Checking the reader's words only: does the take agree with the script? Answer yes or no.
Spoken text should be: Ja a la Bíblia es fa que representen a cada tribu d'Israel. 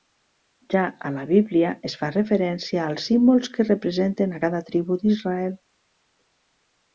no